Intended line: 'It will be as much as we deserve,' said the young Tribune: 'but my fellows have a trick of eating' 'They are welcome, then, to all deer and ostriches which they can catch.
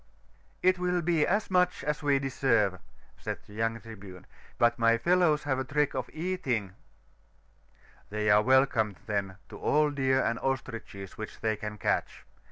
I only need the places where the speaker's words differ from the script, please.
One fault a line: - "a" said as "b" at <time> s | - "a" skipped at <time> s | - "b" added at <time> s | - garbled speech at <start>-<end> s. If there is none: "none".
none